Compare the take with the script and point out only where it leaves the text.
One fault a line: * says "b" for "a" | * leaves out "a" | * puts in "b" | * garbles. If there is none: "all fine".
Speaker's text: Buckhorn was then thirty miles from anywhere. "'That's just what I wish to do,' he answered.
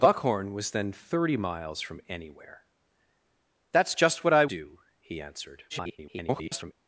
* leaves out "wish to"
* garbles